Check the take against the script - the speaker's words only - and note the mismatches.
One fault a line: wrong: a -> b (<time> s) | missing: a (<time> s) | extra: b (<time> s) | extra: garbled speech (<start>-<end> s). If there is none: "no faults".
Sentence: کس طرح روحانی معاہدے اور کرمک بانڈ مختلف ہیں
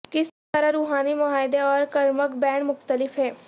no faults